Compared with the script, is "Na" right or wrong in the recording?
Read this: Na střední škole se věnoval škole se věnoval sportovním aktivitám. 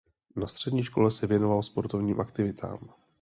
right